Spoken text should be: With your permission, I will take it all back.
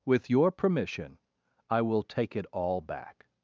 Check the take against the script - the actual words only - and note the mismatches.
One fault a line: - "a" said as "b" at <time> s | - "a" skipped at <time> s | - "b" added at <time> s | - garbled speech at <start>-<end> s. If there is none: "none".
none